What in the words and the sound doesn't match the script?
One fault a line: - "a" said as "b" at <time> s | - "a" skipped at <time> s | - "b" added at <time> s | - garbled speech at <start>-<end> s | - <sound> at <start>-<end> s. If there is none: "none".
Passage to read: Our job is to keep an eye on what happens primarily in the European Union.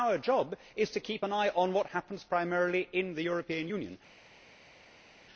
none